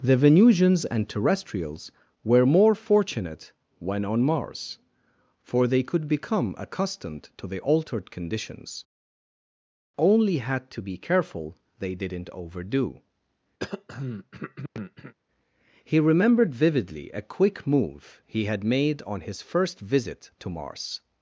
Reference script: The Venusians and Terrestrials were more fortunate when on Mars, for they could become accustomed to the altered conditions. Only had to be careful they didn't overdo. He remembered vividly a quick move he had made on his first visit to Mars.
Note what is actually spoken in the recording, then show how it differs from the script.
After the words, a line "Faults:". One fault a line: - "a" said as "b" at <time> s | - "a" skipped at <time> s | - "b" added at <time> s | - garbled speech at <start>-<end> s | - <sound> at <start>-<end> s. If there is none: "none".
The Venusians and Terrestrials were more fortunate when on Mars, for they could become accustomed to the altered conditions. Only had to be careful they didn't overdo. He remembered vividly a quick move he had made on his first visit to Mars.
Faults:
- throat clearing at 13.6-15.1 s